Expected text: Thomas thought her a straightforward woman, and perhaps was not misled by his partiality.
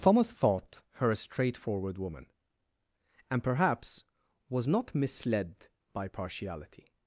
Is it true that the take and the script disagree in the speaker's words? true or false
true